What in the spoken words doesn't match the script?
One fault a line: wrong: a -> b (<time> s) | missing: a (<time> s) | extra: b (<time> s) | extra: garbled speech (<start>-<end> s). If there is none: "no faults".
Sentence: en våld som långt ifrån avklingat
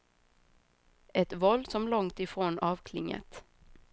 wrong: en -> ett (1.1 s)